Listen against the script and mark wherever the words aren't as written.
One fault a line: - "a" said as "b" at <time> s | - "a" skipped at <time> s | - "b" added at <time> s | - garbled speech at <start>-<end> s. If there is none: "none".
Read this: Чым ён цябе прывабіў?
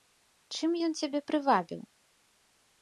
none